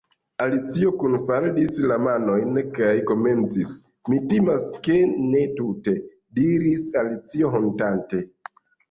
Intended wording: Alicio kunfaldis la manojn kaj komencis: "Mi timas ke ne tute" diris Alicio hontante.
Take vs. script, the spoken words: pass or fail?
pass